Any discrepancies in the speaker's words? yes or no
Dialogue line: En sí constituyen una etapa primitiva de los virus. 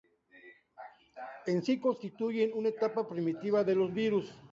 no